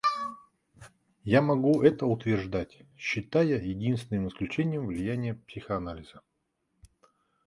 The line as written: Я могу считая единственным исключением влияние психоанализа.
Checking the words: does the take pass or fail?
fail